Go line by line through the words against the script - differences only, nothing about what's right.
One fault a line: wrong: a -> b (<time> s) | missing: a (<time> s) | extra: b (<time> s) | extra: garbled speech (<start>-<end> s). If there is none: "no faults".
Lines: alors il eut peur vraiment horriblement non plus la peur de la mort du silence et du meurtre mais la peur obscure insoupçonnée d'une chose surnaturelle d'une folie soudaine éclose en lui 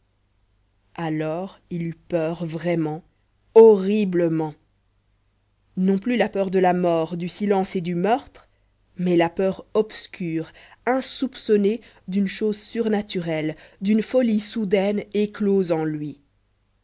no faults